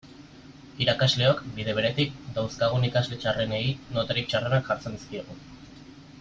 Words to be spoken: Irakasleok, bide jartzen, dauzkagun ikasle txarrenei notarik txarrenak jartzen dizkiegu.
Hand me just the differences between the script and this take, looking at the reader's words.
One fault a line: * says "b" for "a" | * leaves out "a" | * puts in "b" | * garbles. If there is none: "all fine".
* says "beretik" for "jartzen"